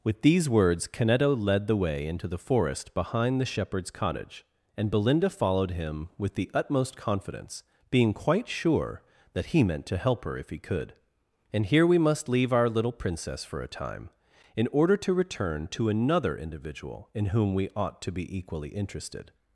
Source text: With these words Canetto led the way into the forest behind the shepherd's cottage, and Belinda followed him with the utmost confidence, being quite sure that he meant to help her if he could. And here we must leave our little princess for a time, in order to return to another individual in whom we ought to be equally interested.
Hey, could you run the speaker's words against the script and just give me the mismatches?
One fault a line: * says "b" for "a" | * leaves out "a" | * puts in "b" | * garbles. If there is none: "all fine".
all fine